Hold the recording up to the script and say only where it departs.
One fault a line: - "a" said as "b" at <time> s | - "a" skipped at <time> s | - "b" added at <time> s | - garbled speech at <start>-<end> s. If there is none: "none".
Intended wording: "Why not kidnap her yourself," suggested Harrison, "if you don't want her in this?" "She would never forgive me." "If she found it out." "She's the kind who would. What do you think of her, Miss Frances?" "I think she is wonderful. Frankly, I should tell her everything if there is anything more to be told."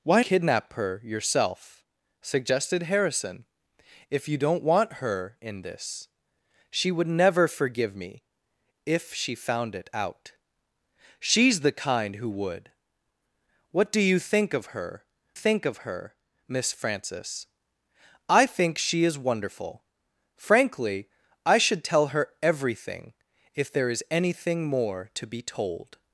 - "not" skipped at 0.2 s
- "think of her" added at 15.3 s